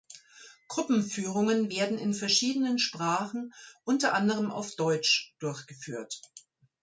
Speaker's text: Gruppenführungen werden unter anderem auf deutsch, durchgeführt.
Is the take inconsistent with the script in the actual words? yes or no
yes